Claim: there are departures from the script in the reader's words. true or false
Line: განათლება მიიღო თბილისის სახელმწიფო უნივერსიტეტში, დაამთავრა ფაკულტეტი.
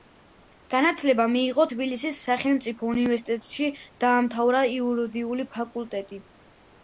true